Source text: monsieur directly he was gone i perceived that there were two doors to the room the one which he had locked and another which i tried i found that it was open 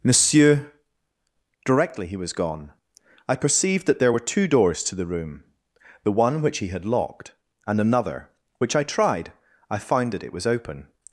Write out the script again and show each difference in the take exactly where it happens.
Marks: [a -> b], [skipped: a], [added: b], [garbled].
monsieur directly he was gone i perceived that there were two doors to the room the one which he had locked and another which i tried i found that it was open